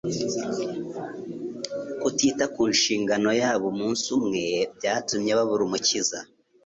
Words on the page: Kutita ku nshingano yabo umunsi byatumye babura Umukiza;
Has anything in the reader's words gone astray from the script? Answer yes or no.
yes